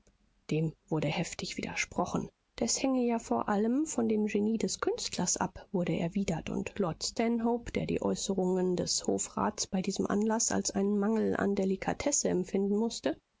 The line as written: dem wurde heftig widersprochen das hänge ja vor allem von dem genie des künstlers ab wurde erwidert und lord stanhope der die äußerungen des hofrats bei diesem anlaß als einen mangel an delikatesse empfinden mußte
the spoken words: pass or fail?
pass